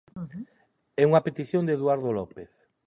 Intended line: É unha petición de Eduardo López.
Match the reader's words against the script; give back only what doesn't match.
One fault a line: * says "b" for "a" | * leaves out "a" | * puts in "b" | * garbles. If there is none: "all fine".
all fine